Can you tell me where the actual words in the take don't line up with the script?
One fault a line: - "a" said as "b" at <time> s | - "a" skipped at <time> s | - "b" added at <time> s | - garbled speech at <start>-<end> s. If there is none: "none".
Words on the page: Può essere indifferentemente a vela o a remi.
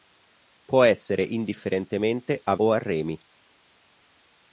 - "vela" skipped at 2.5 s